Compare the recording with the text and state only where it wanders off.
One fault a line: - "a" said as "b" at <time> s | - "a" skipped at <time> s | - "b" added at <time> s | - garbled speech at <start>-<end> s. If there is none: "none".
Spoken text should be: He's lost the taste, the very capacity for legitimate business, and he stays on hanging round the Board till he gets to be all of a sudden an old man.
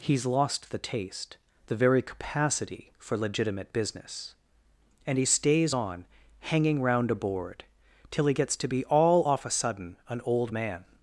- "the" said as "a" at 7.1 s
- "of" said as "off" at 9.3 s